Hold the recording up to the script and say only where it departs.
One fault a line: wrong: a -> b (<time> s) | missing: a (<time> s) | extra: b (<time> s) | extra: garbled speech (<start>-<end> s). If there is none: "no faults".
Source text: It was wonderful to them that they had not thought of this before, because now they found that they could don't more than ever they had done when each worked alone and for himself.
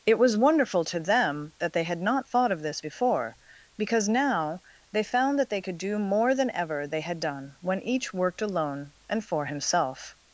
wrong: don't -> do (5.8 s)